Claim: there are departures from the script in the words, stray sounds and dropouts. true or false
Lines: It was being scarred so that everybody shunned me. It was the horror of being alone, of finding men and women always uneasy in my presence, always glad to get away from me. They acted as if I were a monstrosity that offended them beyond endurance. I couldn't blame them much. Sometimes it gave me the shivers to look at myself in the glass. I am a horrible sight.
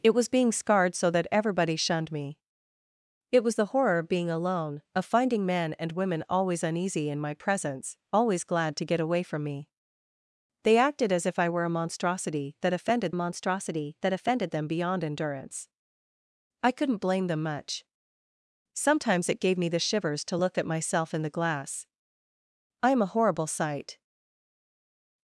true